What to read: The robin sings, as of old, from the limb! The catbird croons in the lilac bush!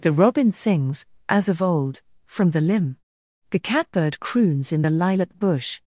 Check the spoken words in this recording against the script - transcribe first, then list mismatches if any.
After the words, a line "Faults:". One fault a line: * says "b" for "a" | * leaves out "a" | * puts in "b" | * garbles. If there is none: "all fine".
The robin sings, as of old, from the limb! The catbird croons in the lilac bush!
Faults:
all fine